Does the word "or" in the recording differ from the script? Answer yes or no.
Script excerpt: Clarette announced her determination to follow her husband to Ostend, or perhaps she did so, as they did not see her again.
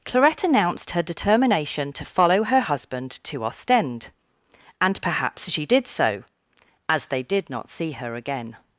yes